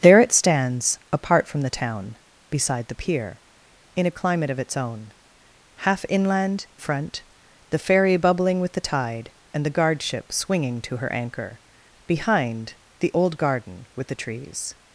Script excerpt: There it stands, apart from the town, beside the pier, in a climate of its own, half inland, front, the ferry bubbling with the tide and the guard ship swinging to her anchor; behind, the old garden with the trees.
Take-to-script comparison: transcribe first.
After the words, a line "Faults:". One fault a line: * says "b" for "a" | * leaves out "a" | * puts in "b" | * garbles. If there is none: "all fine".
There it stands, apart from the town, beside the pier, in a climate of its own, half inland, front, the ferry bubbling with the tide and the guard ship swinging to her anchor; behind, the old garden with the trees.
Faults:
all fine